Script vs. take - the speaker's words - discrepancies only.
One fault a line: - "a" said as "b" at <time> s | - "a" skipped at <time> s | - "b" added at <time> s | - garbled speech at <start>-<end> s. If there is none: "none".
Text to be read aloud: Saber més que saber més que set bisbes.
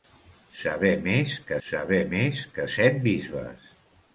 none